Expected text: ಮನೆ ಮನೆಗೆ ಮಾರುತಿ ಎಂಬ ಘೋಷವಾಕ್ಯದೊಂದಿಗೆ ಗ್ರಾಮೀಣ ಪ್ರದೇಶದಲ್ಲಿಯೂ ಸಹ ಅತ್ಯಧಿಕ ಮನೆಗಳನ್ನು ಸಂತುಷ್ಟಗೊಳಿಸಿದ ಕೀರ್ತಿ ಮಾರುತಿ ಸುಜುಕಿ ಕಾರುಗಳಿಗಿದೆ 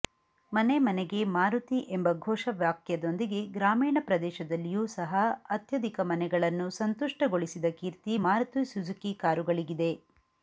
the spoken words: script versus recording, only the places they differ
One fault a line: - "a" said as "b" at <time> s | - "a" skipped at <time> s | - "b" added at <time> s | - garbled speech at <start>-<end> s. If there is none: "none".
none